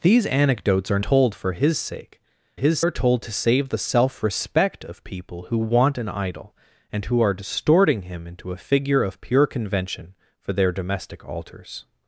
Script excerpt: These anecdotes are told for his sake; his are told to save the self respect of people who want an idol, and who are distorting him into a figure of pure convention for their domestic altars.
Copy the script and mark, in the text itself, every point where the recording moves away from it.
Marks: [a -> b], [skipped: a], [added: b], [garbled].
These anecdotes are told for his sake; his are told to save the self respect of people who want an idol, and who are distorting him into a figure of pure convention for their domestic altars.